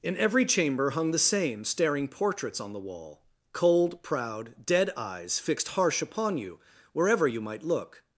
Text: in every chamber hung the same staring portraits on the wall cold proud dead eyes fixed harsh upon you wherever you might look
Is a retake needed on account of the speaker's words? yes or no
no